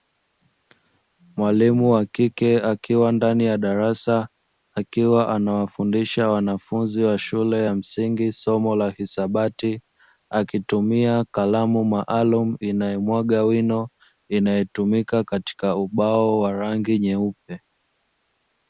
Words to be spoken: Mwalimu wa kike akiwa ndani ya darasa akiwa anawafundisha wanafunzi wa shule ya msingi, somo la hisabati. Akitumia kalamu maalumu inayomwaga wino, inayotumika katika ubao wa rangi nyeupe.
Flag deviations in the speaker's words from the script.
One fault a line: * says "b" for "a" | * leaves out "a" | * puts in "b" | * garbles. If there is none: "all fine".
all fine